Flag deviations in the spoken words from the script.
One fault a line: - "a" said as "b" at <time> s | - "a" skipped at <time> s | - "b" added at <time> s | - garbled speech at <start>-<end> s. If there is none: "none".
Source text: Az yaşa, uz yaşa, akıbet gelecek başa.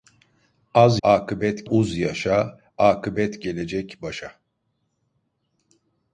- "yaşa" said as "akıbet" at 1.0 s